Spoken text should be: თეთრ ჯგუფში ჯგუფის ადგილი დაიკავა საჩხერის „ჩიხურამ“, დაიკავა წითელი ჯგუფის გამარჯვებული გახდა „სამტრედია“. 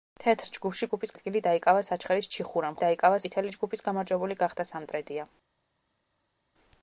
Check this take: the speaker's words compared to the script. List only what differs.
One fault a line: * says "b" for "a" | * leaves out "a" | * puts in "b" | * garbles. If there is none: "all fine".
all fine